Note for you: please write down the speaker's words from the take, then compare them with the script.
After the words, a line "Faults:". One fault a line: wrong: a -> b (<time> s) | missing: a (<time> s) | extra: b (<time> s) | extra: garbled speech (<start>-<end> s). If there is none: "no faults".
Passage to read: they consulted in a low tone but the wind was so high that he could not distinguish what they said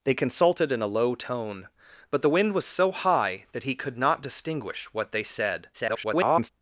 they consulted in a low tone but the wind was so high that he could not distinguish what they said [garbled]
Faults:
extra: garbled speech (5.7-6.5 s)